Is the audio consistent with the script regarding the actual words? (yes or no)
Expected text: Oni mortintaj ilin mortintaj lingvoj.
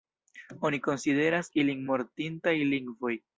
no